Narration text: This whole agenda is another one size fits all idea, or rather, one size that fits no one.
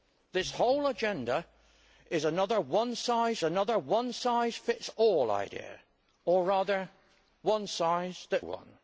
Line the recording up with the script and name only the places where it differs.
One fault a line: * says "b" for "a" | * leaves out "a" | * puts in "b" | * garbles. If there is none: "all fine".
* puts in "another one size"
* leaves out "fits no"